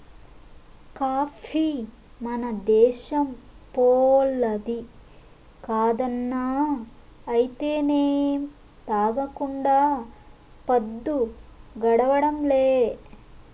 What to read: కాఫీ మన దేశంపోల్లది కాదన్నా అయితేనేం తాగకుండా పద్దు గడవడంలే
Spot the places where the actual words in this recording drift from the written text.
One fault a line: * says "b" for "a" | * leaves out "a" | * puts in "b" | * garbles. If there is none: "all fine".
all fine